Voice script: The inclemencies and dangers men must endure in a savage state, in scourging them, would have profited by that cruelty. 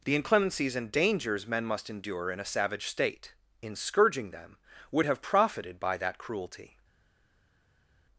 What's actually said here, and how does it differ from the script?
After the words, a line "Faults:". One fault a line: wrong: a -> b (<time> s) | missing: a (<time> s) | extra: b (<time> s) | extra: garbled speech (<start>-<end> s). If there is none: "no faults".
The inclemencies and dangers men must endure in a savage state, in scourging them, would have profited by that cruelty.
Faults:
no faults